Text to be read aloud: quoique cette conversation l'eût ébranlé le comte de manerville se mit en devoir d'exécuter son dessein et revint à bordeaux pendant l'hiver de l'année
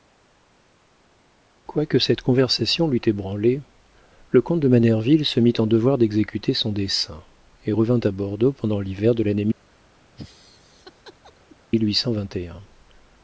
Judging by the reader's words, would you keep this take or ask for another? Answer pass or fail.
pass